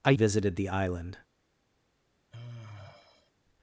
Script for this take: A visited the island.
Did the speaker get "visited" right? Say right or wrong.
right